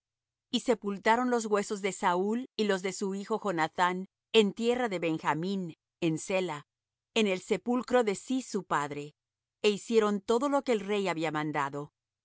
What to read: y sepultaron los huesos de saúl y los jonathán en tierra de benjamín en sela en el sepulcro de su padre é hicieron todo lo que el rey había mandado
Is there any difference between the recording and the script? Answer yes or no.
yes